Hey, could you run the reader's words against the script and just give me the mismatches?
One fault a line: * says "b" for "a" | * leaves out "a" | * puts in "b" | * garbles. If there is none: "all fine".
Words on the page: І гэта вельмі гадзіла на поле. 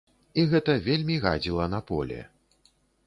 all fine